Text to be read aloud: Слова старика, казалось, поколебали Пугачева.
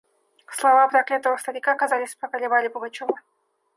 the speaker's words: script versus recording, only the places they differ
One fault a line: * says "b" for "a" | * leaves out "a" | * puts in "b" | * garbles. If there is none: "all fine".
* puts in "проклятого"